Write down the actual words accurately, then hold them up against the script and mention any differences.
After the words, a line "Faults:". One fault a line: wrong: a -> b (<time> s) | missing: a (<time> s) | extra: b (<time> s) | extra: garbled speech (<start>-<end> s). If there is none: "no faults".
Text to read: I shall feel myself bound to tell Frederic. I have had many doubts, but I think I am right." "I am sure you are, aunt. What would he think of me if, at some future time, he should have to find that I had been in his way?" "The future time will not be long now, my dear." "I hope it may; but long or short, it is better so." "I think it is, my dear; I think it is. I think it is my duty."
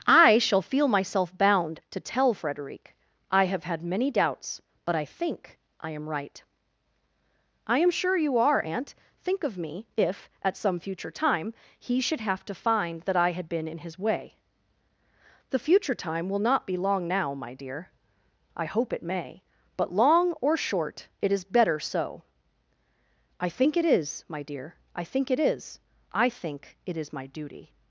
I shall feel myself bound to tell Frederic. I have had many doubts, but I think I am right." "I am sure you are, aunt. think of me if, at some future time, he should have to find that I had been in his way?" "The future time will not be long now, my dear." "I hope it may; but long or short, it is better so." "I think it is, my dear; I think it is. I think it is my duty."
Faults:
missing: What would he (8.9 s)